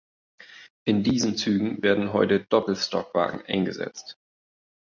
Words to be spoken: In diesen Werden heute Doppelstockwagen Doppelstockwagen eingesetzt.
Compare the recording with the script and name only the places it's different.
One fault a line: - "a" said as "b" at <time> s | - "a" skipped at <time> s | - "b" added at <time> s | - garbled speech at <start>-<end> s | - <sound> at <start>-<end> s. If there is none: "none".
- "Zügen" added at 1.4 s
- "Doppelstockwagen" skipped at 3.5 s